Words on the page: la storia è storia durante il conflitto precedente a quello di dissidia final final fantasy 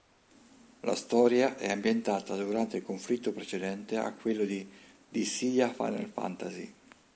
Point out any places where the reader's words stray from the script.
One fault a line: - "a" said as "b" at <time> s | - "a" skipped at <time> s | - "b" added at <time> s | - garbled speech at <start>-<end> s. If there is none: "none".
- "storia" said as "ambientata" at 1.7 s
- "final" skipped at 6.1 s